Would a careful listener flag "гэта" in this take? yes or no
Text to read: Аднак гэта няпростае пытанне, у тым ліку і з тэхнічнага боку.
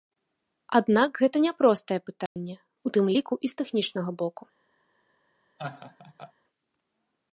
no